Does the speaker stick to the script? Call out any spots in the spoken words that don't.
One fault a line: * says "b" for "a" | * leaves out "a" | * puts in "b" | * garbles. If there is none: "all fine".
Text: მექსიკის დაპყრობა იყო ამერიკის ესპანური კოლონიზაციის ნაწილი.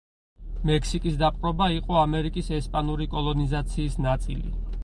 all fine